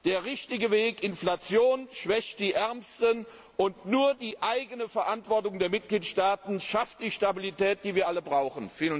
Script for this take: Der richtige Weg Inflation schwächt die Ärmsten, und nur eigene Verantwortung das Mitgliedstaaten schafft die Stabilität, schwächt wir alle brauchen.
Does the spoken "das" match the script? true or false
false